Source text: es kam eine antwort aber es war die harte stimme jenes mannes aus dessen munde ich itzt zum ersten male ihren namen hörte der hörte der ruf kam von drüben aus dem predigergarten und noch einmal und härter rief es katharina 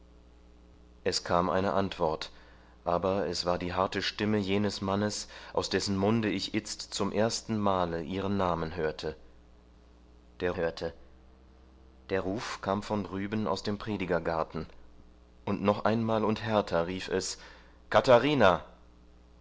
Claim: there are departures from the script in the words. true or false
false